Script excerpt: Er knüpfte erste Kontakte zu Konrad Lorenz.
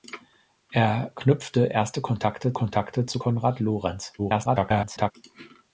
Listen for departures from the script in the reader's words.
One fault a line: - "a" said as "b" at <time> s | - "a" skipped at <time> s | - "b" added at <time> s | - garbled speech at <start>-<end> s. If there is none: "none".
- "Kontakte" added at 2.5 s
- garbled speech at 4.2-5.1 s